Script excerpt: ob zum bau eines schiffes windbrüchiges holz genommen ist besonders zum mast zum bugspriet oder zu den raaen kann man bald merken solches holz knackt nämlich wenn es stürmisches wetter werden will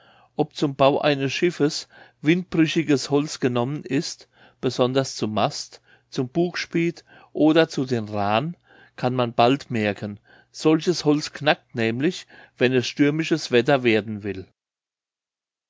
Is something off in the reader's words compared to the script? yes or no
no